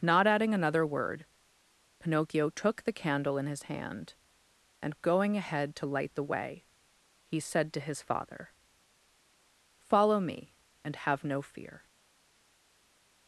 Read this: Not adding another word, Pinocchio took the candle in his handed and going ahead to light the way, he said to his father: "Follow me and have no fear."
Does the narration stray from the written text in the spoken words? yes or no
yes